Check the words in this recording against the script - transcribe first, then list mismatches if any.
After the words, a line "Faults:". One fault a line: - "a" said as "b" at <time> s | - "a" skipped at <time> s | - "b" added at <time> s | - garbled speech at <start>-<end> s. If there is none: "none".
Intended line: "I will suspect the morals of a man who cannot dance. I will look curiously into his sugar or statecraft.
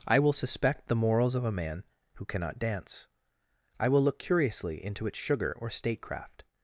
"I will suspect the morals of a man who cannot dance. I will look curiously into its sugar or statecraft.
Faults:
- "his" said as "its" at 5.1 s